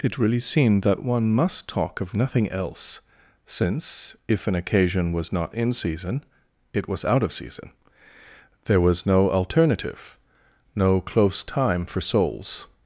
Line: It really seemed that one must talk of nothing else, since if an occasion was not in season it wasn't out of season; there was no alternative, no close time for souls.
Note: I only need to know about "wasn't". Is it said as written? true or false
false